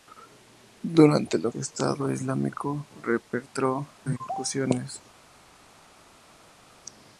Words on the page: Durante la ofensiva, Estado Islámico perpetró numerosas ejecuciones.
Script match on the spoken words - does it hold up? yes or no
no